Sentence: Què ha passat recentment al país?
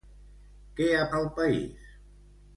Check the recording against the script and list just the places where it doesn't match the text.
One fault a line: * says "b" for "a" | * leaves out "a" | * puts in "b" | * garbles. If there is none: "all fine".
* leaves out "passat recentment"